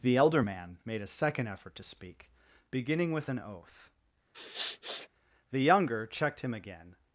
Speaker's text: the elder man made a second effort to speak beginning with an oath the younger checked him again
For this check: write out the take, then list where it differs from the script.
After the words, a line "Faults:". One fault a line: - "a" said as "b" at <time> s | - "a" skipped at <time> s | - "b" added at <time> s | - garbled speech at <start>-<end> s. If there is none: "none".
the elder man made a second effort to speak beginning with an oath the younger checked him again
Faults:
none